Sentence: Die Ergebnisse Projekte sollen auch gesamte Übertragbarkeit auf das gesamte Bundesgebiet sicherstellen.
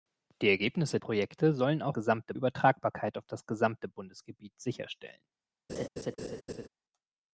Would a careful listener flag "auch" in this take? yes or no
no